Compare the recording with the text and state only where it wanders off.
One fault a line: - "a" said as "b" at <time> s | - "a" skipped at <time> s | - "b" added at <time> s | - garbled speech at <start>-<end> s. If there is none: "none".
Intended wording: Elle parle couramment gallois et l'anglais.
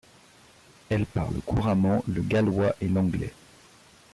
- "le" added at 2.1 s